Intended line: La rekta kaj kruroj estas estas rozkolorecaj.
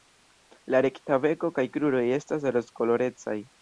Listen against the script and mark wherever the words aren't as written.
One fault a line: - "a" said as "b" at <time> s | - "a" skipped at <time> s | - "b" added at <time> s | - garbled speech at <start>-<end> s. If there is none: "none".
- "beko" added at 1.3 s
- "estas" skipped at 2.5 s